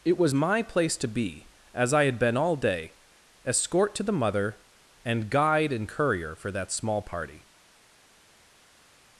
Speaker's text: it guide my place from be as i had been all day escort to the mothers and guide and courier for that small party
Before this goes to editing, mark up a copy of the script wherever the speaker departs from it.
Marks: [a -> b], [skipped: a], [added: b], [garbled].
it [guide -> was] my place [from -> to] be as i had been all day escort to the [mothers -> mother] and guide and courier for that small party